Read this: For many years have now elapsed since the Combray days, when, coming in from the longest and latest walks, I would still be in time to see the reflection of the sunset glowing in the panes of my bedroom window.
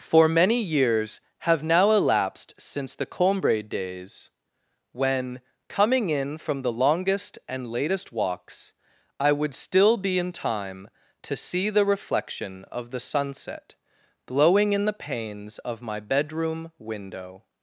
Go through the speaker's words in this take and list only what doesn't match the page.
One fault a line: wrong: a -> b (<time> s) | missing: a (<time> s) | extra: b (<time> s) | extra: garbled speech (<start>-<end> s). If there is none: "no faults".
no faults